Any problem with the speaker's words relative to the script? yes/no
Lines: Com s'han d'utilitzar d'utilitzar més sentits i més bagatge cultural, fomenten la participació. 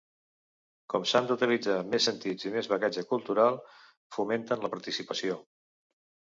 yes